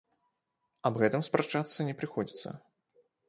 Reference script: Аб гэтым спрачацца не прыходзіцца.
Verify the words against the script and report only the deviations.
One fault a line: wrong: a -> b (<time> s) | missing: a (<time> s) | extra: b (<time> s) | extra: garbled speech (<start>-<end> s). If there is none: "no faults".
no faults